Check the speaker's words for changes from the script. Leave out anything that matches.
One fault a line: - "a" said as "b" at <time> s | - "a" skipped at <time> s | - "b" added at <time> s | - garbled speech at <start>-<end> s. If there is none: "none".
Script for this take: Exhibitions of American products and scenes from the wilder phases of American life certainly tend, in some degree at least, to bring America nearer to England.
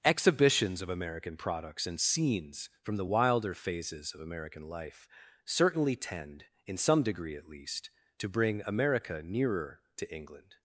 none